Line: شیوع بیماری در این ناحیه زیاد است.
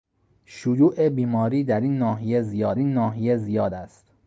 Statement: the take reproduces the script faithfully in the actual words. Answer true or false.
false